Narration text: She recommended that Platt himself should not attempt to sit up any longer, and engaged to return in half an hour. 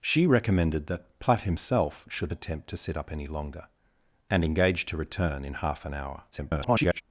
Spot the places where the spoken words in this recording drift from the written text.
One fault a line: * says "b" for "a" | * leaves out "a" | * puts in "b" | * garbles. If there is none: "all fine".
* leaves out "not"
* garbles